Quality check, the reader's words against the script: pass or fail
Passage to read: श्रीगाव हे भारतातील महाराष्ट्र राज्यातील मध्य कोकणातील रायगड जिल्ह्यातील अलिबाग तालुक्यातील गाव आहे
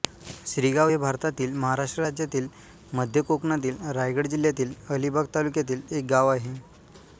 fail